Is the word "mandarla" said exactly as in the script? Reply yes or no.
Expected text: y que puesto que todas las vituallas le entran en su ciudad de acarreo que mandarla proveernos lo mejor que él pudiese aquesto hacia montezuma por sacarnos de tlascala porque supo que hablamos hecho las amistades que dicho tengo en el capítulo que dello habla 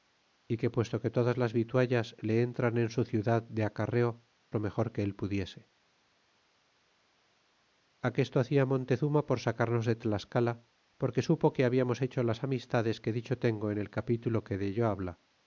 no